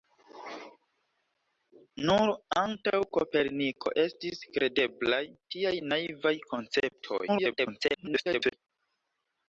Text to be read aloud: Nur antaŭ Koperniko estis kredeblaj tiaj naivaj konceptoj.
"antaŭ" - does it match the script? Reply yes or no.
yes